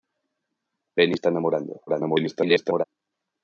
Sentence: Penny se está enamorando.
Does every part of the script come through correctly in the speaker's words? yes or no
no